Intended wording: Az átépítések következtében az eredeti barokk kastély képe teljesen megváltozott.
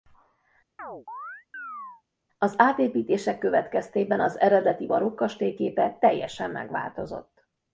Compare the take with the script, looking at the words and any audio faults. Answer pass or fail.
fail